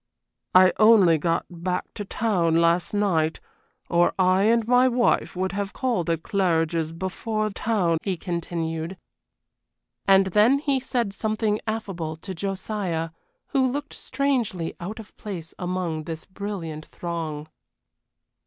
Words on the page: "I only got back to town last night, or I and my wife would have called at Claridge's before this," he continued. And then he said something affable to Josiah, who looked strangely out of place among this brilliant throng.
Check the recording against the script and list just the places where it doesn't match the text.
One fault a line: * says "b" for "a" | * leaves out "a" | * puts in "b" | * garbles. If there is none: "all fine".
* says "town" for "this"